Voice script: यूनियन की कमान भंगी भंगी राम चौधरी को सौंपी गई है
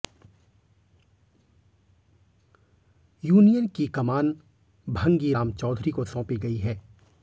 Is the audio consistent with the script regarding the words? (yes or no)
no